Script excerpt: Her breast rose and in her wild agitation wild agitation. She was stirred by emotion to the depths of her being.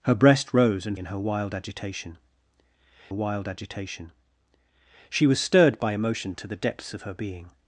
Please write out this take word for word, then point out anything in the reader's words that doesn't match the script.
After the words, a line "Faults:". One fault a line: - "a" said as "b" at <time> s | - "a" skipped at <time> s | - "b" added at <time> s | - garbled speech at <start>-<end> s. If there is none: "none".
Her breast rose and in her wild agitation wild agitation. She was stirred by emotion to the depths of her being.
Faults:
none